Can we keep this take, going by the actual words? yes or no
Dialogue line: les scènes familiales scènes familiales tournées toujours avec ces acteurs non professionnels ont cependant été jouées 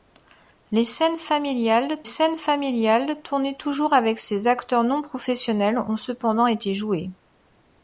yes